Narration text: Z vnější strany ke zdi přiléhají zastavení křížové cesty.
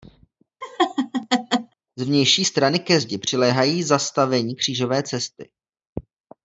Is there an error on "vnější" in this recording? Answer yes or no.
no